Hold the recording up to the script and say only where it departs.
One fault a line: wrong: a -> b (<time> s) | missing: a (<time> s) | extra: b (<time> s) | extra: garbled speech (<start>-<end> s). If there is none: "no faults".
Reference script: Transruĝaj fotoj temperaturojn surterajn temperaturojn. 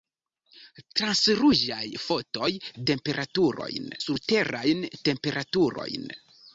no faults